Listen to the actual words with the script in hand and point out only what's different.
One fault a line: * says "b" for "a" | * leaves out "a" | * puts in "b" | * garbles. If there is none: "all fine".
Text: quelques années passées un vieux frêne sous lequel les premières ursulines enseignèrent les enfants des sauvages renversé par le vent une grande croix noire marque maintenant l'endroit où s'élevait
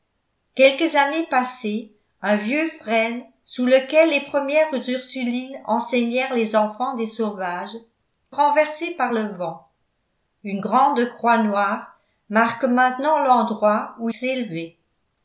all fine